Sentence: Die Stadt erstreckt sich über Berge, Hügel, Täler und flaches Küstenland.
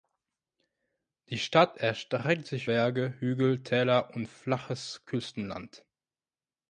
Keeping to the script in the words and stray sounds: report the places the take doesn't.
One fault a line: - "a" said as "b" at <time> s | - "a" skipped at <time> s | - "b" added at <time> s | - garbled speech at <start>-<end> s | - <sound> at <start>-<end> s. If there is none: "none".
- "über" skipped at 2.7 s